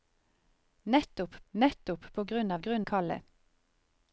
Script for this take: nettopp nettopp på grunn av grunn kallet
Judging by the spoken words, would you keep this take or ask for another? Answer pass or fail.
pass